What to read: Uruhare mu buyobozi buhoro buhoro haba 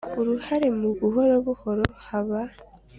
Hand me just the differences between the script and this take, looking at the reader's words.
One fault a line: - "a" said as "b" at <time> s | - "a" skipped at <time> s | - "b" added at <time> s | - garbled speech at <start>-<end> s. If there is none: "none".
- "buyobozi" skipped at 0.9 s